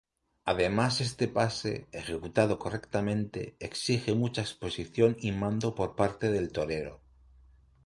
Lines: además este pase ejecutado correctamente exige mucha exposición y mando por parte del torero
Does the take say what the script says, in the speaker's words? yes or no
yes